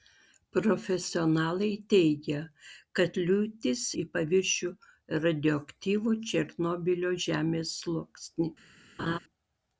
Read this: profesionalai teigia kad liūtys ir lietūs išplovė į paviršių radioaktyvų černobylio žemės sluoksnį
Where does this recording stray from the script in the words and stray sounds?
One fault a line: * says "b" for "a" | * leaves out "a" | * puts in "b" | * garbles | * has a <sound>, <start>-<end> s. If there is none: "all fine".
* leaves out "ir lietūs išplovė"
* has a laugh, 9.0-9.2 s